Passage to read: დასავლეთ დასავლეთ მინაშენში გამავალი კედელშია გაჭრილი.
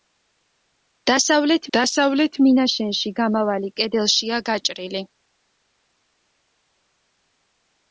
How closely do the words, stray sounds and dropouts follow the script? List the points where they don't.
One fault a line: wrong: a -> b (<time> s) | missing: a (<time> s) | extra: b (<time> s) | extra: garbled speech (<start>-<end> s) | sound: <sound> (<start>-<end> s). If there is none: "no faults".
no faults